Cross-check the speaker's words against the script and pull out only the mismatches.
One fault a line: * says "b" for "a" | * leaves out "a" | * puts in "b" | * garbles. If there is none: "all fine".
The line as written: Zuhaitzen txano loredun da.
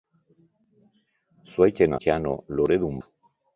all fine